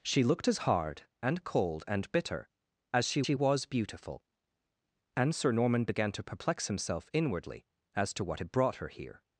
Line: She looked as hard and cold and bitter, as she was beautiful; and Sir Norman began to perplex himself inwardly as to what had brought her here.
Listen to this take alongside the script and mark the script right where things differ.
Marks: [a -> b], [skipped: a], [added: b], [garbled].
She looked as hard and cold and bitter, as she [added: she] was beautiful; and Sir Norman began to perplex himself inwardly as to what had brought her here.